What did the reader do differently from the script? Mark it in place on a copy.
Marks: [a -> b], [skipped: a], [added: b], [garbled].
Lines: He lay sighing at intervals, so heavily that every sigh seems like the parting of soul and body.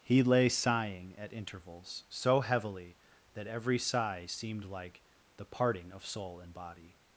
He lay sighing at intervals, so heavily that every sigh [seems -> seemed] like the parting of soul and body.